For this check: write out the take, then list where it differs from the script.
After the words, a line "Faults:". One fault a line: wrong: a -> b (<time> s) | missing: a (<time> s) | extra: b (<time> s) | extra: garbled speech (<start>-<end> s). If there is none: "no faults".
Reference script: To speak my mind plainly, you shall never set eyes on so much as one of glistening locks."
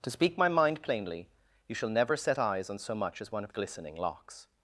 To speak my mind plainly, you shall never set eyes on so much as one of glistening locks."
Faults:
no faults